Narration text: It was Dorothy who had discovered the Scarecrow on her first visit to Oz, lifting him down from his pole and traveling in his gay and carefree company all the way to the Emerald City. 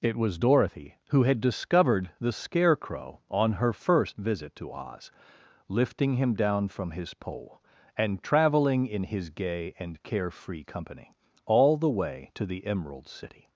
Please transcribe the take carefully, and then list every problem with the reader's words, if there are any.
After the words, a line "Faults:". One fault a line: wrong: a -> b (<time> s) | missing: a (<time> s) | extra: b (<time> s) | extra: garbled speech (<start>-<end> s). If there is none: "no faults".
It was Dorothy who had discovered the Scarecrow on her first visit to Oz, lifting him down from his pole and traveling in his gay and carefree company all the way to the Emerald City.
Faults:
no faults